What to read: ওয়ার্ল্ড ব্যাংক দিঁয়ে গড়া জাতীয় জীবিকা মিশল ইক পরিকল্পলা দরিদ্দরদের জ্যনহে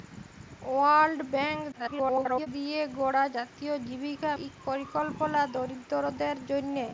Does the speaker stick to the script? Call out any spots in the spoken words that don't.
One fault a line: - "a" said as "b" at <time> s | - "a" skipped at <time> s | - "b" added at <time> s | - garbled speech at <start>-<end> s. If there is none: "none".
- garbled speech at 1.7-2.5 s
- "মিশল" skipped at 4.3 s